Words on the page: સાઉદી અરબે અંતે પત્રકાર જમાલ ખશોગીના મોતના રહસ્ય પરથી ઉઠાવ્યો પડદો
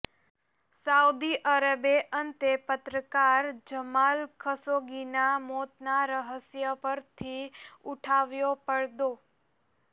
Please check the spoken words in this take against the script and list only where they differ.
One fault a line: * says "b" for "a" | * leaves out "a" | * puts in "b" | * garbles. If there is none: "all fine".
all fine